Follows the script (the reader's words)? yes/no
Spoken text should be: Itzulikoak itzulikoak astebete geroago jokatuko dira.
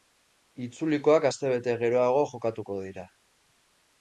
no